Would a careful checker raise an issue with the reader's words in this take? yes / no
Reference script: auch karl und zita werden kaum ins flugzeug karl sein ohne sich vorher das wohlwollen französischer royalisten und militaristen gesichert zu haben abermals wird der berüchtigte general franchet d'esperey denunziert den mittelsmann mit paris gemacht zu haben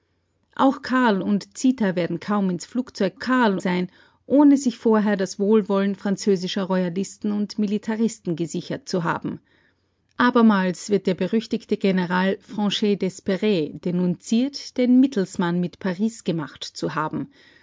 no